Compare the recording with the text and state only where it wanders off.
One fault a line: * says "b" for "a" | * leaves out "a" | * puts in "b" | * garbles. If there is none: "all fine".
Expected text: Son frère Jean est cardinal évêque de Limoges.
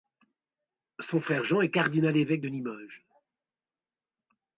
all fine